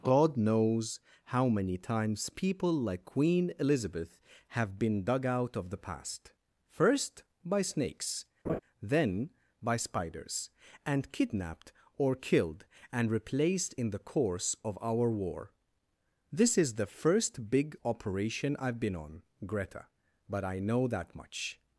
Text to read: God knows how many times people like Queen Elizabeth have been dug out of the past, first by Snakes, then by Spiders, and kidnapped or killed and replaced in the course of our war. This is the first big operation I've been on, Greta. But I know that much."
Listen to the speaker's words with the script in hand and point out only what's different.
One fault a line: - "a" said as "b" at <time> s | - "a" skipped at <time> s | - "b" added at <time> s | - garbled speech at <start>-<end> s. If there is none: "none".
none